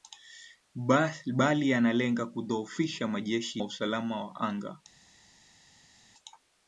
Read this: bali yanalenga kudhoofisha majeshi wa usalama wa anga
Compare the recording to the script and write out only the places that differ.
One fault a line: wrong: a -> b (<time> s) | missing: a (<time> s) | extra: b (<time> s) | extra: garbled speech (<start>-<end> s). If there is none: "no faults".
no faults